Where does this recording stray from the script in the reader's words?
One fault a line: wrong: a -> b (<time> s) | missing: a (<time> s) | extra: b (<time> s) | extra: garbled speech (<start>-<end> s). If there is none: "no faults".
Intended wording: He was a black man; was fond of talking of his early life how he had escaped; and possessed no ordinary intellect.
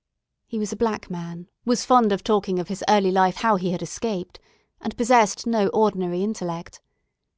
no faults